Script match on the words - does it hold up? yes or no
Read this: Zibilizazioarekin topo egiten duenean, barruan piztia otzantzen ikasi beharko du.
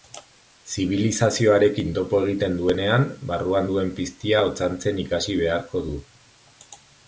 no